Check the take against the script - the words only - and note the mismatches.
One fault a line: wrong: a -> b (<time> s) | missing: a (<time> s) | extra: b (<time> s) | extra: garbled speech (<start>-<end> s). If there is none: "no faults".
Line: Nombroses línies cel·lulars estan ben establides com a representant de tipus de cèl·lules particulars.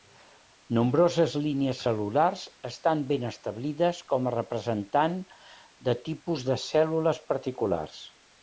no faults